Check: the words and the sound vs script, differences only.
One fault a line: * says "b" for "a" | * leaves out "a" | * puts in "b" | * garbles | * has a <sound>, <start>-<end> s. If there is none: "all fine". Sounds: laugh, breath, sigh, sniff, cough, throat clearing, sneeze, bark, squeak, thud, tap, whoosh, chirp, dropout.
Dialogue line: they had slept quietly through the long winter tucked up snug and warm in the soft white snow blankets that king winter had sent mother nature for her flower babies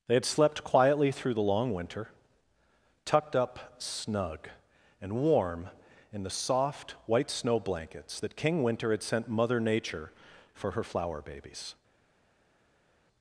all fine